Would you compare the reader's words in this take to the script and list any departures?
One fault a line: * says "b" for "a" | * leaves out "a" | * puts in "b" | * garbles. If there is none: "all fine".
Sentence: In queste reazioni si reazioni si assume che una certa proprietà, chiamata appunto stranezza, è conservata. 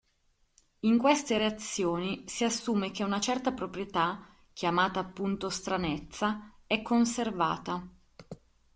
* leaves out "reazioni si"